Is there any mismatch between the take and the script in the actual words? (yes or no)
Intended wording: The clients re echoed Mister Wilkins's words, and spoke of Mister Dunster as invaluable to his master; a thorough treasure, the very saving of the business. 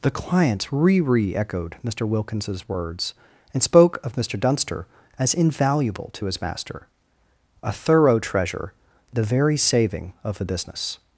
yes